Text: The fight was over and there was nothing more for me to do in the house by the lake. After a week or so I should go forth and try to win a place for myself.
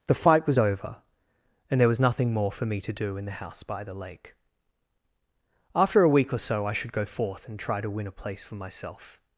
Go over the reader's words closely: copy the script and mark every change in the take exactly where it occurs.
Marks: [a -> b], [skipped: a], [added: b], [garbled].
The fight was over and there was nothing more for me to do in the house by the lake. After a week or so I should go forth and try to win a place for myself.